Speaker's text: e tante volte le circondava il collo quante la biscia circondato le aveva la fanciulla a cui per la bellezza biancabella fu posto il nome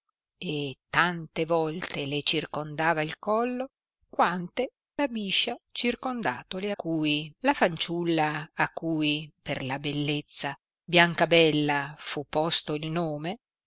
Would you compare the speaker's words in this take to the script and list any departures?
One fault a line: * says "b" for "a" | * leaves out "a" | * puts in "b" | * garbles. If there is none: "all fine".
* says "cui" for "aveva"